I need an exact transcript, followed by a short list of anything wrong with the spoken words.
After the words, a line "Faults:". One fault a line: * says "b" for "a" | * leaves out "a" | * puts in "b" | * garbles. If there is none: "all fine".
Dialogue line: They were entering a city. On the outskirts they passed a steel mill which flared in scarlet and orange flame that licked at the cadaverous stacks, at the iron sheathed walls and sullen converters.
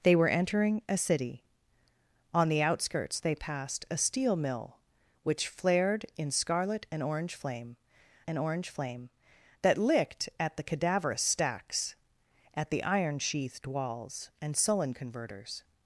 They were entering a city. On the outskirts they passed a steel mill which flared in scarlet and orange flame and orange flame that licked at the cadaverous stacks, at the iron sheathed walls and sullen converters.
Faults:
* puts in "and orange flame"